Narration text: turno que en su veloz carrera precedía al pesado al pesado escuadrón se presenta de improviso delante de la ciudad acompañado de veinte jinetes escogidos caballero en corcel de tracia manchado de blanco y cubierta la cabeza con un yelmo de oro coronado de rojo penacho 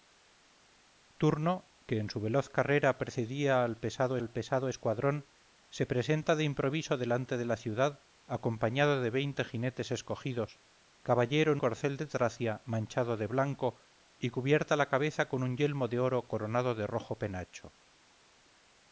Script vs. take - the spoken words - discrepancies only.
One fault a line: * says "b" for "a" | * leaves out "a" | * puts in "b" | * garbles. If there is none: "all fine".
all fine